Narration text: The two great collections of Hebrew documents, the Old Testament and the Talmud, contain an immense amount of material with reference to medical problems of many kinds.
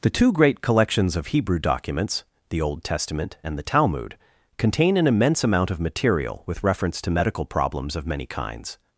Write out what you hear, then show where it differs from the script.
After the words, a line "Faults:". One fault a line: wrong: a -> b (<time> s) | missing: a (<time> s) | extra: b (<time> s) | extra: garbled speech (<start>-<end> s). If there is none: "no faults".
The two great collections of Hebrew documents, the Old Testament and the Talmud, contain an immense amount of material with reference to medical problems of many kinds.
Faults:
no faults